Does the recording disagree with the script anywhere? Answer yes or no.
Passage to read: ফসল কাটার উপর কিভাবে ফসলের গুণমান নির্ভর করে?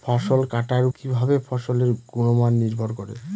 yes